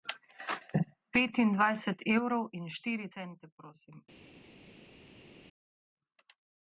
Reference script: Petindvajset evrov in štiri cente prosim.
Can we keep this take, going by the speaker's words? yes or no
yes